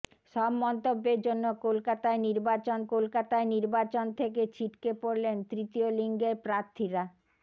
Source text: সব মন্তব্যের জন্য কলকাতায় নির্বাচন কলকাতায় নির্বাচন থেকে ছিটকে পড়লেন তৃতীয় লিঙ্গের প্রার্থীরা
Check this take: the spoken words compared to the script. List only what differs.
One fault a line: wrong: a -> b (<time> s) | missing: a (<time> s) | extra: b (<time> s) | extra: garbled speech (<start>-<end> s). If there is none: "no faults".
no faults